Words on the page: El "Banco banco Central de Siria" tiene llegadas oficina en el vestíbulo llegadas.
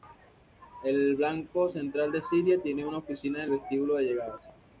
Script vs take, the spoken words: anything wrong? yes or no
yes